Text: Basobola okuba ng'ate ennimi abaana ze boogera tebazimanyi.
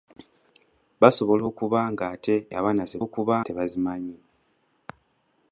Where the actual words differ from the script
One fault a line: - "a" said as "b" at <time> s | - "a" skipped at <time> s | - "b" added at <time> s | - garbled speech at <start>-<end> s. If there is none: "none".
- "ennimi" skipped at 2.3 s
- "boogera" said as "okuba" at 3.0 s